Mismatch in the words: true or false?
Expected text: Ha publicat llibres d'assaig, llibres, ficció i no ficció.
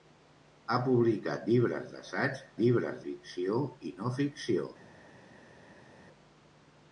false